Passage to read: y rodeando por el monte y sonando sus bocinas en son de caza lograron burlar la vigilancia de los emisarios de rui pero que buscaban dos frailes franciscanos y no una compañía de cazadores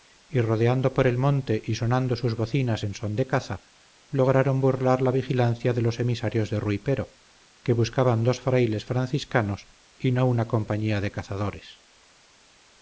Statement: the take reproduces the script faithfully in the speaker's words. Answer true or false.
true